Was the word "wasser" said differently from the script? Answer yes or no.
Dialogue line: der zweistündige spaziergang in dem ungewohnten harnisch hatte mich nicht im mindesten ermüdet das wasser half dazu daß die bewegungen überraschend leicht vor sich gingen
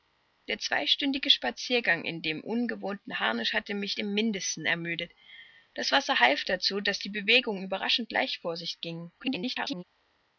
no